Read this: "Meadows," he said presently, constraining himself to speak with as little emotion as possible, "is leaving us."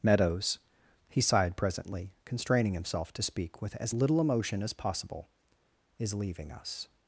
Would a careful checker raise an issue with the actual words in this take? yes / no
yes